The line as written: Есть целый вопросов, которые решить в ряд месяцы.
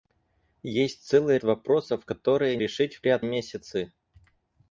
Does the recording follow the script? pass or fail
pass